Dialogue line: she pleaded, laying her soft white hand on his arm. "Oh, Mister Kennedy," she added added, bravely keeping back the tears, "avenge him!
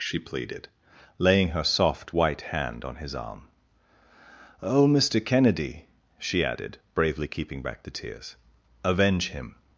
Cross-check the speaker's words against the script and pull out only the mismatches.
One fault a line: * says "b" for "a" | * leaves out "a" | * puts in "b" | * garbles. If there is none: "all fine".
* leaves out "added"